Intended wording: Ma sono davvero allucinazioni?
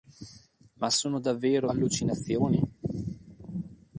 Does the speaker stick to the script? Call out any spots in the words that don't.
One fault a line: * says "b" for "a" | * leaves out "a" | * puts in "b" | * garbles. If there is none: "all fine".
all fine